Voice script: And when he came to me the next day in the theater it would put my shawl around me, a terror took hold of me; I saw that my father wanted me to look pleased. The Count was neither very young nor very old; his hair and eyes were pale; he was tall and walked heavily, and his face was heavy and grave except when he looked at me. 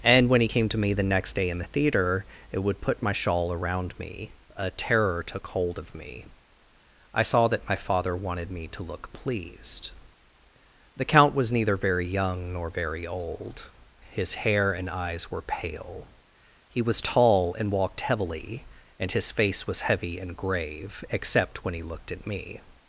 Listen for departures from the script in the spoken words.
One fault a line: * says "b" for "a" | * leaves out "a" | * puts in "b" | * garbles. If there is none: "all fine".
all fine